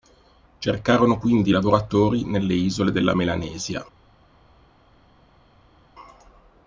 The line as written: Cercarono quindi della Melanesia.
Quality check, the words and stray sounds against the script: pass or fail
fail